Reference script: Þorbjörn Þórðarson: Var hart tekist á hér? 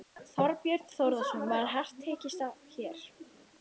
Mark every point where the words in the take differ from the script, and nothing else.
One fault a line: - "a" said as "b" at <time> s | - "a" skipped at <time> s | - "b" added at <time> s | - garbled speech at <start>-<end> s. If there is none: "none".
none